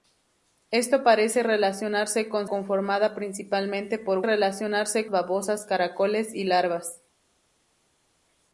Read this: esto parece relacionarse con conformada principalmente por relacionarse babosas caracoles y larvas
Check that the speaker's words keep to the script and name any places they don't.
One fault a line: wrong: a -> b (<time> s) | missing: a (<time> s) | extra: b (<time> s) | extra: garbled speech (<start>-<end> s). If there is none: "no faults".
no faults